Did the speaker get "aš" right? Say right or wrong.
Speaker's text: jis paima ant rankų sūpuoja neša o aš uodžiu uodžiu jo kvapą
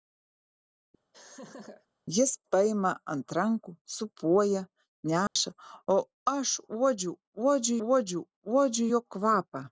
right